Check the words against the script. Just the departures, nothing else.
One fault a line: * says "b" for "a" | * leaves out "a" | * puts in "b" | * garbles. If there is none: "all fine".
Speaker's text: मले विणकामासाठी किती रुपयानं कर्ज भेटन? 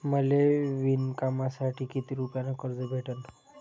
all fine